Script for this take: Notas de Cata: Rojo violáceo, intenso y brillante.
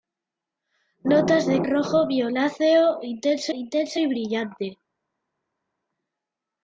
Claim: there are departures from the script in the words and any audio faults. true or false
true